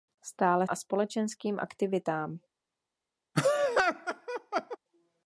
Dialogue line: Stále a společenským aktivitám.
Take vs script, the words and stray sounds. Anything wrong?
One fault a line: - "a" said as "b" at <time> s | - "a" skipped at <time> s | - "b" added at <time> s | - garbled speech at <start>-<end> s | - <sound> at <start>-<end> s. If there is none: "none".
- laugh at 3.3-4.8 s